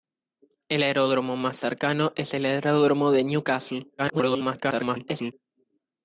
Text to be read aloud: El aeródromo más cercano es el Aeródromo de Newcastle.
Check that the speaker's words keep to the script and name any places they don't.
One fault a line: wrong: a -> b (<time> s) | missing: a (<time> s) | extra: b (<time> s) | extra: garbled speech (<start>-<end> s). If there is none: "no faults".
extra: garbled speech (4.0-5.3 s)